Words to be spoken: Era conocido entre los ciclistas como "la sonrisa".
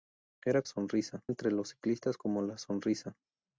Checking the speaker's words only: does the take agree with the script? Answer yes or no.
no